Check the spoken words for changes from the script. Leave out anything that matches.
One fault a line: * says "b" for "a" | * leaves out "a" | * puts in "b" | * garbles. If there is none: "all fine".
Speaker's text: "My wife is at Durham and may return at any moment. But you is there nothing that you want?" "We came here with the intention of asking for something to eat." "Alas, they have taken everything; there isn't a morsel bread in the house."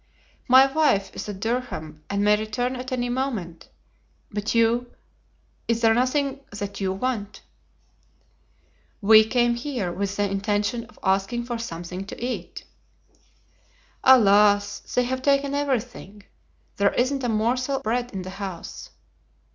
all fine